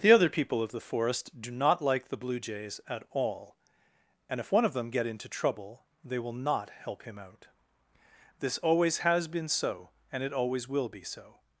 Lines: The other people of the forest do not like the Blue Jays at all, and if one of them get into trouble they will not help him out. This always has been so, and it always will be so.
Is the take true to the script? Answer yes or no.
yes